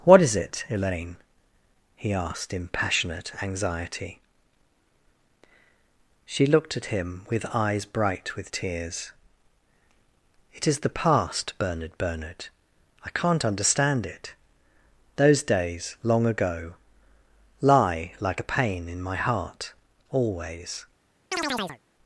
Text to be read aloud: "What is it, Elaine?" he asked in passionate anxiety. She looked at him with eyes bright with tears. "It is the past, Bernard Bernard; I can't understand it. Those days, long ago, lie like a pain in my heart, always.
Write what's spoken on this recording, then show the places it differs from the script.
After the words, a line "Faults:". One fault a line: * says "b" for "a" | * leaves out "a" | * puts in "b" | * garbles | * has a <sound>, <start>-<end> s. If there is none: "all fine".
"What is it, Elaine?" he asked in passionate anxiety. She looked at him with eyes bright with tears. "It is the past, Bernard Bernard; I can't understand it. Those days, long ago, lie like a pain in my heart, always.
Faults:
* has a chirp, 21.3-21.8 s